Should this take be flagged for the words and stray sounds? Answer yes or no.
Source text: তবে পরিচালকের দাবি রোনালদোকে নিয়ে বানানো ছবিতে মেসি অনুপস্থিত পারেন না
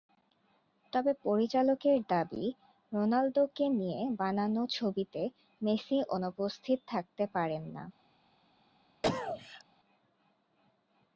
yes